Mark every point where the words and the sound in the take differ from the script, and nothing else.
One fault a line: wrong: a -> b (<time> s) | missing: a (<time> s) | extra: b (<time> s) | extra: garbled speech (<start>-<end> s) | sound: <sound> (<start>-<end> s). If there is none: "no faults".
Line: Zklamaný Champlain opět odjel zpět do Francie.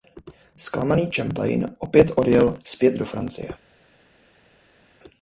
no faults